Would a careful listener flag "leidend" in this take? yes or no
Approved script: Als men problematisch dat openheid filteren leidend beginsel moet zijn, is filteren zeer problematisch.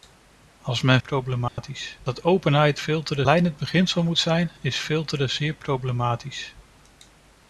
no